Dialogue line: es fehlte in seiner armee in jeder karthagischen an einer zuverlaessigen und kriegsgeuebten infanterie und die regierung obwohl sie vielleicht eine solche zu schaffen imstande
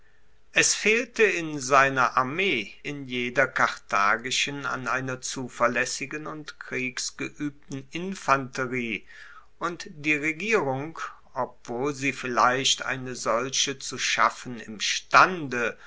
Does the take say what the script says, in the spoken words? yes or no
yes